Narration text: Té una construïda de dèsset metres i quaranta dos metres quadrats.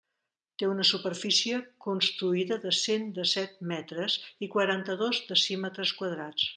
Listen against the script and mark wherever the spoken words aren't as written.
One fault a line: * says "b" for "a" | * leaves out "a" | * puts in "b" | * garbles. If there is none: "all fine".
* puts in "superfície"
* puts in "cent"
* says "decímetres" for "metres"